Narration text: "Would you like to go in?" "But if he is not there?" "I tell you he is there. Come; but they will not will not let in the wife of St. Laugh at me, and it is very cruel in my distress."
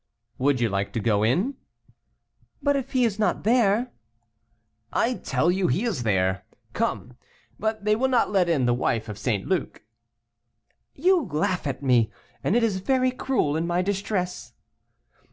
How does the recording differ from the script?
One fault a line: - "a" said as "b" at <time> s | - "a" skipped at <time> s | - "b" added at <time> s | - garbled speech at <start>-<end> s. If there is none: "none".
- "will not" skipped at 8.3 s
- "Luc You" added at 9.5 s